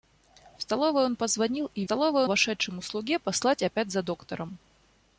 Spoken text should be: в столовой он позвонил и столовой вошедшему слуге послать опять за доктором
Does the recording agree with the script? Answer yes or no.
yes